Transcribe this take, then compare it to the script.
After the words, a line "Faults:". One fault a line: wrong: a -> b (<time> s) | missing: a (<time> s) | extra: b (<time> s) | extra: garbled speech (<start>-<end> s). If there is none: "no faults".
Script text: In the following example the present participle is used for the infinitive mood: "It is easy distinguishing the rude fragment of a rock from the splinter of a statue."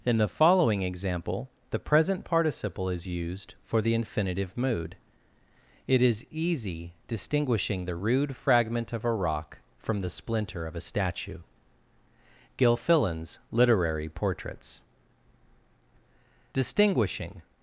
In the following example the present participle is used for the infinitive mood: "It is easy distinguishing the rude fragment of a rock from the splinter of a statue." Gilfillan's Literary Portraits. Distinguishing
Faults:
extra: Gilfillan's Literary Portraits Distinguishing (12.6 s)